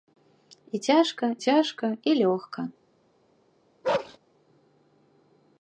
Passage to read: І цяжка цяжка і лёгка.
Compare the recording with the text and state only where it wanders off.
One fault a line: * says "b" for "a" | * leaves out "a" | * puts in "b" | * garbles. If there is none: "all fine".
all fine